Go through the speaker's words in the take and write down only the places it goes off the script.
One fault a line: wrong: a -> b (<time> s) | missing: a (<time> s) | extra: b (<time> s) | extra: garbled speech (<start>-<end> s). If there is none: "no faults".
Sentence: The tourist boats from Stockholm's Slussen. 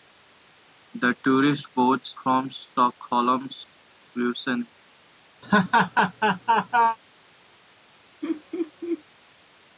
no faults